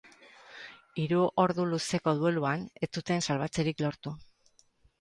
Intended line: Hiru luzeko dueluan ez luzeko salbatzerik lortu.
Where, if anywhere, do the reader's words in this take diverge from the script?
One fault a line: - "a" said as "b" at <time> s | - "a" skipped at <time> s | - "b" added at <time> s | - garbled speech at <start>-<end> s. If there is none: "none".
- "ordu" added at 1.4 s
- "luzeko" said as "zuten" at 3.0 s